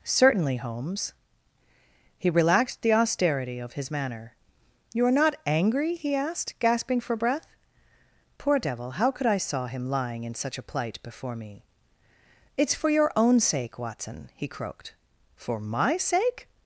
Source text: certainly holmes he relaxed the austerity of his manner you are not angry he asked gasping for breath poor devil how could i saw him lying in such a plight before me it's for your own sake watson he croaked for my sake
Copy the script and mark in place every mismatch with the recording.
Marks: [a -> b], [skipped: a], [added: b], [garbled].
certainly holmes he relaxed the austerity of his manner you are not angry he asked gasping for breath poor devil how could i saw him lying in such a plight before me it's for your own sake watson he croaked for my sake